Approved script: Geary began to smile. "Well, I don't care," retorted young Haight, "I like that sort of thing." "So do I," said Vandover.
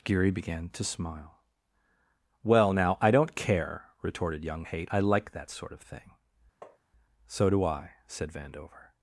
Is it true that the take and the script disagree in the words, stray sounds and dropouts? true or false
true